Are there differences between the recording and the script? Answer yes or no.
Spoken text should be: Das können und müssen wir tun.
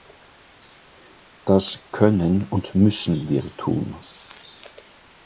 no